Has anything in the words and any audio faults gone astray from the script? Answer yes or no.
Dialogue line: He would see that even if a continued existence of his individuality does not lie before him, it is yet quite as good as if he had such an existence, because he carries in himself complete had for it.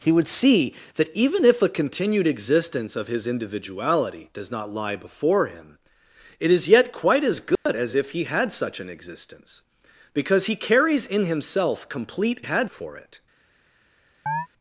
yes